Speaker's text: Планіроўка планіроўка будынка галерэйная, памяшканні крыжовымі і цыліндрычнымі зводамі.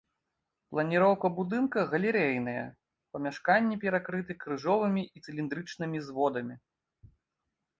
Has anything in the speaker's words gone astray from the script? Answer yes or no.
yes